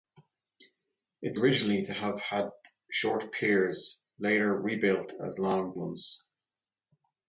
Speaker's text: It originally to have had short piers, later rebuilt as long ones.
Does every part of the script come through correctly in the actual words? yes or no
yes